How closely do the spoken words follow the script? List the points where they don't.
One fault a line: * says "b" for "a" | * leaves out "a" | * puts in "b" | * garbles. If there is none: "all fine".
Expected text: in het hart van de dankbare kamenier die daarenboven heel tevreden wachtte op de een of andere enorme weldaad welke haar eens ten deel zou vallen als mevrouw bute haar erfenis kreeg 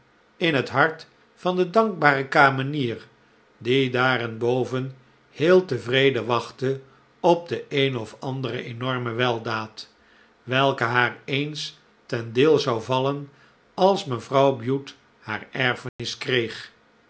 all fine